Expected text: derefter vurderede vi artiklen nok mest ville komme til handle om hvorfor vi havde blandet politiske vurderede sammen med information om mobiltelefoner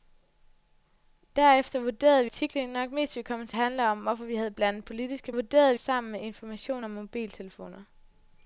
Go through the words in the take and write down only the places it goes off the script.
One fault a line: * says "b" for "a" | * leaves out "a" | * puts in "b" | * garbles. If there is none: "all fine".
all fine